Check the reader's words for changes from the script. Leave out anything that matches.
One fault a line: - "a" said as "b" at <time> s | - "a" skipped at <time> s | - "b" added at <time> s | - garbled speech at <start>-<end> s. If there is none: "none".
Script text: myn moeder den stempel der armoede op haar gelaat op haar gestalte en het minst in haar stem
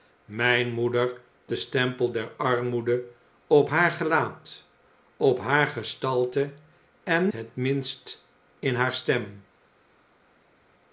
none